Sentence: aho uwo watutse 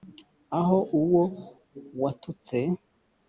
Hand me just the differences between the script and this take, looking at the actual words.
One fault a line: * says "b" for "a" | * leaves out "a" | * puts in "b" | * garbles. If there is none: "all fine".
all fine